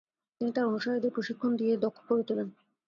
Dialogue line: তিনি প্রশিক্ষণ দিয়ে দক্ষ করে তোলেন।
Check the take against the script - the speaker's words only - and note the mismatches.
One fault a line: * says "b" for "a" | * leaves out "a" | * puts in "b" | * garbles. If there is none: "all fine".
* puts in "তার অনুসারীদের"